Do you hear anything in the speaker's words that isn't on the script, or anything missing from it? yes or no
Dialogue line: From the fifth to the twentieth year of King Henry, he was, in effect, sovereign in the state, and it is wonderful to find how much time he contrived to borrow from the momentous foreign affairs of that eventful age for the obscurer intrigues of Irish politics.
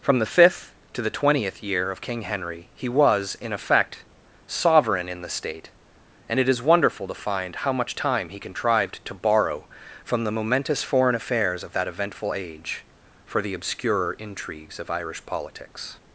no